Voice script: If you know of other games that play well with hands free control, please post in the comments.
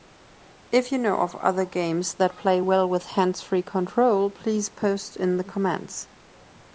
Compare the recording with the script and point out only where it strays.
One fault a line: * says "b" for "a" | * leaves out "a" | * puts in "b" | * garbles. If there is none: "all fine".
all fine